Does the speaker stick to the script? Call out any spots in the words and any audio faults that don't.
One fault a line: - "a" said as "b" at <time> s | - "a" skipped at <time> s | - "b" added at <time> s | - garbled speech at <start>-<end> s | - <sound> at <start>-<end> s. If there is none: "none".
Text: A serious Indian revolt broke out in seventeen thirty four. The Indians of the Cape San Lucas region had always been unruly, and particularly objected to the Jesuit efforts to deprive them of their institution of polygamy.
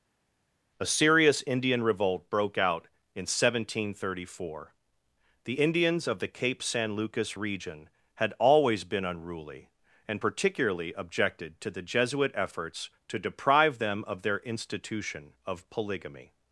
none